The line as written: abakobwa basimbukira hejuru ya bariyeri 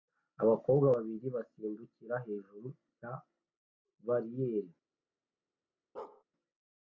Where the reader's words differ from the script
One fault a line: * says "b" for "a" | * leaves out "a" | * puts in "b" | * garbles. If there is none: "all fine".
* puts in "babiri"